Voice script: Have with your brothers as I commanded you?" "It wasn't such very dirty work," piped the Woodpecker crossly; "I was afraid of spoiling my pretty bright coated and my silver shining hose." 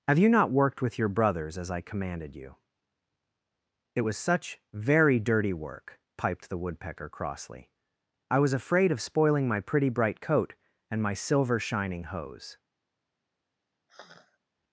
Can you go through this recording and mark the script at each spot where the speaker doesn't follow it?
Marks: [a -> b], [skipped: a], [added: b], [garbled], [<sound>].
Have [added: you not worked] with your brothers as I commanded you?" "It [wasn't -> was] such very dirty work," piped the Woodpecker crossly; "I was afraid of spoiling my pretty bright [coated -> coat] and my silver shining hose." [sigh]